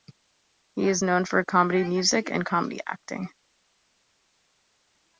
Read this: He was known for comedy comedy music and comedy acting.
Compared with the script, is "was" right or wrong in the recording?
wrong